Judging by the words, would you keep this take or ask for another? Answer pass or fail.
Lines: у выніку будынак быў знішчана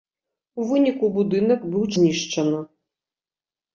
pass